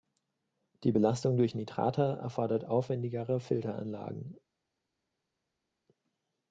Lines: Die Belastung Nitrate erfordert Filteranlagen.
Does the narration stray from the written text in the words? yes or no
yes